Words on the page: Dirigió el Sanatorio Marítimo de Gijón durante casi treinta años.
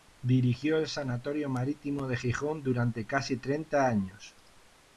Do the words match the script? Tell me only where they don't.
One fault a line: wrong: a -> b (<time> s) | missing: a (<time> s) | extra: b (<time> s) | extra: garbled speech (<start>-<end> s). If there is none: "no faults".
no faults